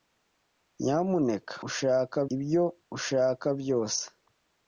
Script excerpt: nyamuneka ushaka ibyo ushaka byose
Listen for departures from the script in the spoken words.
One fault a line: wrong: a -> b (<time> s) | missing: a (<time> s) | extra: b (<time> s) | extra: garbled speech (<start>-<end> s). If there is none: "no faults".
no faults